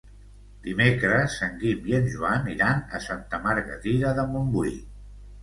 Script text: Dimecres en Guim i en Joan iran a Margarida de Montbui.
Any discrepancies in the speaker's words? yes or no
yes